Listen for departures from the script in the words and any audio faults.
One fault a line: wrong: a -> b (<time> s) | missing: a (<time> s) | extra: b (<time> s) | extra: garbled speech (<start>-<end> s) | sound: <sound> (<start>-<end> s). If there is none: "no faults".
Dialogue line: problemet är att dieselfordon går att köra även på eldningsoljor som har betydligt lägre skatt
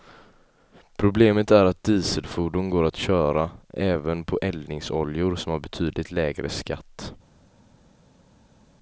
no faults